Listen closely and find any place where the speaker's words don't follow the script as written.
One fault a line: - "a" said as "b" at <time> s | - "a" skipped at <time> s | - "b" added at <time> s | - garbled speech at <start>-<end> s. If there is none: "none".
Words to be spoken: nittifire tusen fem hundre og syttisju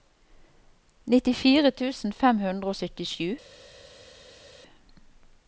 none